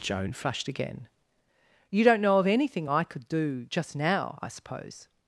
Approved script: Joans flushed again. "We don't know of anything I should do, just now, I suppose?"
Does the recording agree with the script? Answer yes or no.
no